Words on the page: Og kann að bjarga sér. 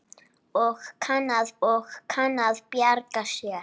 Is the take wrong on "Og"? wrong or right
right